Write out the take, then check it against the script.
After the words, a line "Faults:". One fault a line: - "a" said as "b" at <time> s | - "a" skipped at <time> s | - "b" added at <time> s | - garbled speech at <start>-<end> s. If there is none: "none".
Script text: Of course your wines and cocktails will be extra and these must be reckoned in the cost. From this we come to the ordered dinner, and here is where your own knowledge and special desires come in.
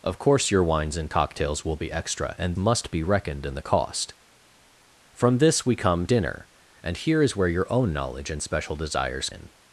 Of course your wines and cocktails will be extra and must be reckoned in the cost. From this we come dinner, and here is where your own knowledge and special desires in.
Faults:
- "these" skipped at 2.5 s
- "to the ordered" skipped at 6.1 s
- "come" skipped at 9.3 s